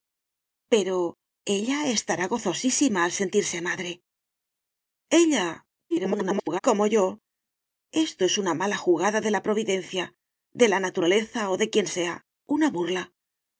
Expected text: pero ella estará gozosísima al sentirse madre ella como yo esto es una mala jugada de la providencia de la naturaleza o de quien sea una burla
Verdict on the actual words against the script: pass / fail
fail